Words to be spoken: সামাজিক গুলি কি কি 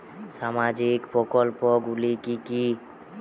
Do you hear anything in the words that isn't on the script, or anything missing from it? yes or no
yes